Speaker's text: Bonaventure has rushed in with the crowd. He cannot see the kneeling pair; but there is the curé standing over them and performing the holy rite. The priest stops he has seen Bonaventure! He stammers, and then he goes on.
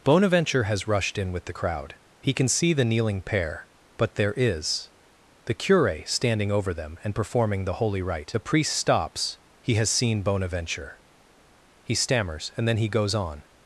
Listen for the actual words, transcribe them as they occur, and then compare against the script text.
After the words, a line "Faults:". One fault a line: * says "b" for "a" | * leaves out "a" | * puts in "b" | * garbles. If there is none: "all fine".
Bonaventure has rushed in with the crowd. He can see the kneeling pair; but there is the curé standing over them and performing the holy rite. The priest stops he has seen Bonaventure! He stammers, and then he goes on.
Faults:
* says "can" for "cannot"